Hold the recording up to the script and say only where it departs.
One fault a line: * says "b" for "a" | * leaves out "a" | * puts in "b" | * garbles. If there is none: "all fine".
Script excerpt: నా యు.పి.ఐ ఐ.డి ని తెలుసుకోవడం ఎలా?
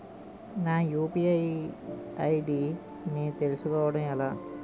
all fine